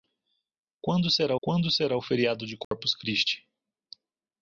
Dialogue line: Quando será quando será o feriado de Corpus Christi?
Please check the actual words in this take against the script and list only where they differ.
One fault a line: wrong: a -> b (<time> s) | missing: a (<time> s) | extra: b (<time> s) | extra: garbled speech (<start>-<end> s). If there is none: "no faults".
no faults